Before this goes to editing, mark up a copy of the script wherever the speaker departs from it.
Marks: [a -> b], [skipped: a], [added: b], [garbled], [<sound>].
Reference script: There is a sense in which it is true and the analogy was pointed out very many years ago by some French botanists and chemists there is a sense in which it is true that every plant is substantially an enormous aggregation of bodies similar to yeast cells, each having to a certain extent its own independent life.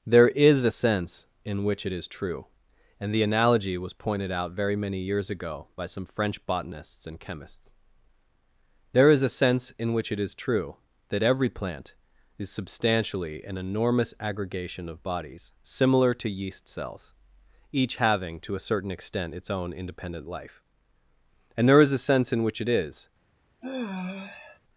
There is a sense in which it is true and the analogy was pointed out very many years ago by some French botanists and chemists there is a sense in which it is true that every plant is substantially an enormous aggregation of bodies similar to yeast cells, each having to a certain extent its own independent life. [added: And there is a sense in which it is] [sigh]